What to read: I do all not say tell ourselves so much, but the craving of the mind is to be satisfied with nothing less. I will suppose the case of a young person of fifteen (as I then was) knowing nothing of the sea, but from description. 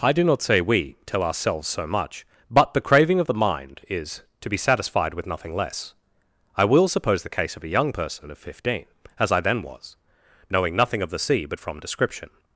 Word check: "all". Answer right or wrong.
wrong